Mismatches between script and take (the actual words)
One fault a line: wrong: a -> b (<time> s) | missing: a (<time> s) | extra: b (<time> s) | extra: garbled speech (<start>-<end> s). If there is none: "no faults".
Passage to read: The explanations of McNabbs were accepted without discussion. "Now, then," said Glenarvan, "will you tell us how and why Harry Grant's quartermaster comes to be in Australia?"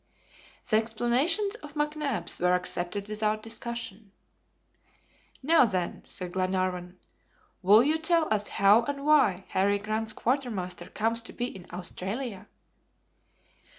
no faults